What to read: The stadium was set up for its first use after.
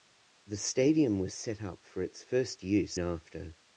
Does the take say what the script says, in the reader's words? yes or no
yes